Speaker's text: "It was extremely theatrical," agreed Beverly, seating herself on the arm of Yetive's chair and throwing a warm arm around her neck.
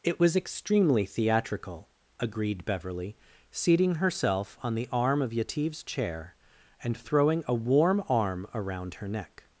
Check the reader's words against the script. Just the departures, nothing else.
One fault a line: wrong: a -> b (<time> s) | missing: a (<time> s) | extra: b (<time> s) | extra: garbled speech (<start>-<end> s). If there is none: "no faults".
no faults